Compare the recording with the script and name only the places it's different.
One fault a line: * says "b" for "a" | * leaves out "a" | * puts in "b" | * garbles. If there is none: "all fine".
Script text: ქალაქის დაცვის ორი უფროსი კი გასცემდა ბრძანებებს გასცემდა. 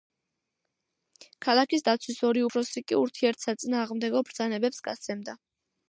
* says "ურთიერთსაწინააღმდეგო" for "გასცემდა"